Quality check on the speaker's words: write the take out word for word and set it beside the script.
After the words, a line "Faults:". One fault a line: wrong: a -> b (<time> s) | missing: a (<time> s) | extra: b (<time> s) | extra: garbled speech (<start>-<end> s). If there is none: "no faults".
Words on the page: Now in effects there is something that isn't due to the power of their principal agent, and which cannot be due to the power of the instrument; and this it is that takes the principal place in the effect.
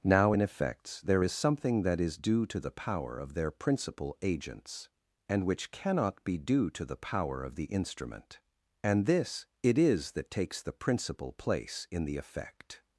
Now in effects there is something that is due to the power of their principal agents, and which cannot be due to the power of the instrument; and this it is that takes the principal place in the effect.
Faults:
wrong: isn't -> is (2.0 s)
wrong: agent -> agents (4.2 s)